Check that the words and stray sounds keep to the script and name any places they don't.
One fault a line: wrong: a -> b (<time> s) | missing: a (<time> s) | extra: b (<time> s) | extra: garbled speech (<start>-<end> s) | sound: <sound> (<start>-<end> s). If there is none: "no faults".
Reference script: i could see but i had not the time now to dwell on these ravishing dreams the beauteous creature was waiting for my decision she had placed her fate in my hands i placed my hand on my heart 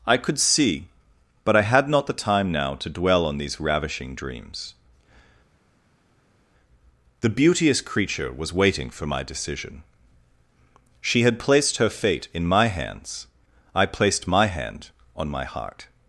no faults